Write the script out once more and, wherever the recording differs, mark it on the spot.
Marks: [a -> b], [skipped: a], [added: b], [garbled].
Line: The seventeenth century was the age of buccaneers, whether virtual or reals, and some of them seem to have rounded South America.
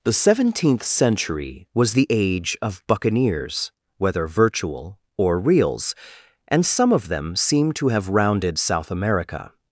The seventeenth century was the age of buccaneers, whether virtual or reals, and some of them seem to have rounded South America.